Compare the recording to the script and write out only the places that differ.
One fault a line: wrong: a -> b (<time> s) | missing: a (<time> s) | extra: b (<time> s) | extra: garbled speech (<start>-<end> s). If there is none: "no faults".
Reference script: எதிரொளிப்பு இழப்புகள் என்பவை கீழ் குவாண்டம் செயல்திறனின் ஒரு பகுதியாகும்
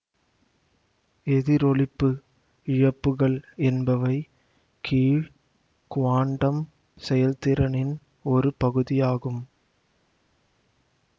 no faults